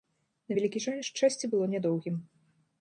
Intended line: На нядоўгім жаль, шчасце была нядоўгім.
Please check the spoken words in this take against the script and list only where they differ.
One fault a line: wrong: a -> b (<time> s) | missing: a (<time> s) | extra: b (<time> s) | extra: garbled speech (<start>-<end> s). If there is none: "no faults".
wrong: нядоўгім -> вялікі (0.6 s)
wrong: была -> было (1.6 s)